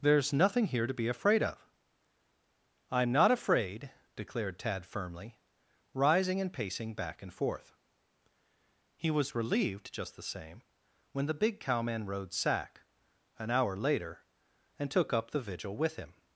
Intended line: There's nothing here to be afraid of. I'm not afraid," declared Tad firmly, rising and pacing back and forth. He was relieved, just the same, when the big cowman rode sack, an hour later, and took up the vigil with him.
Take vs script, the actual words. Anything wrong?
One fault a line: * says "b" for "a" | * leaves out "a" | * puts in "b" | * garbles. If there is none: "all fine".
all fine